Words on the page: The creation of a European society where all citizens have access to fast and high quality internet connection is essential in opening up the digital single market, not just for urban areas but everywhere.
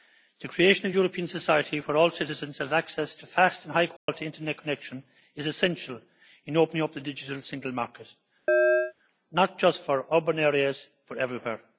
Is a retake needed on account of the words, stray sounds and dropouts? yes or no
yes